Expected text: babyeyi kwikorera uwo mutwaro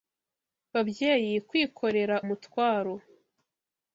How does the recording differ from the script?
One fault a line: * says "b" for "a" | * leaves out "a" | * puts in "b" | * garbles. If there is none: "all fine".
* leaves out "uwo"